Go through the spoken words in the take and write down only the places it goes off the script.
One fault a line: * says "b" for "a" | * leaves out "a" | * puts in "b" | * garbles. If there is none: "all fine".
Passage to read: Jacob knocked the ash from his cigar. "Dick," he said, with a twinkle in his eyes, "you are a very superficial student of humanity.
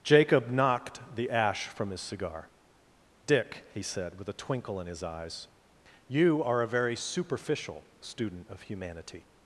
all fine